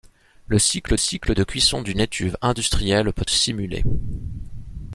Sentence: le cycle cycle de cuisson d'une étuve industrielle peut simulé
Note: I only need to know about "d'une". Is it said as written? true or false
true